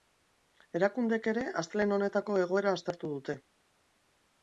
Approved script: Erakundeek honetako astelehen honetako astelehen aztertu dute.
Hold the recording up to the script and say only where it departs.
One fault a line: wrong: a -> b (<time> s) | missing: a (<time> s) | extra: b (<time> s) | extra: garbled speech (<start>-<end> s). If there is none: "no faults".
wrong: honetako -> ere (1.3 s)
wrong: astelehen -> egoera (2.5 s)